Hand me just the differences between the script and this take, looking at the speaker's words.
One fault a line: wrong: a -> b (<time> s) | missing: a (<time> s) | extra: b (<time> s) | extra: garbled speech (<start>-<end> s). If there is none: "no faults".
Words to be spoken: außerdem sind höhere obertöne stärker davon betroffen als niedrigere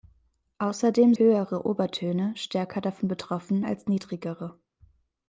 missing: sind (1.1 s)